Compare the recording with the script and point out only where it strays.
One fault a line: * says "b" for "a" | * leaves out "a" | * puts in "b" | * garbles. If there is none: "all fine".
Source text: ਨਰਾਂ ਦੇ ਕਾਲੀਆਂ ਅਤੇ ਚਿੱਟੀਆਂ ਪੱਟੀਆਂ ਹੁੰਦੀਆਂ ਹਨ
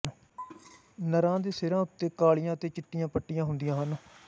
* puts in "ਸਿਰਾਂ ਉੱਤੇ"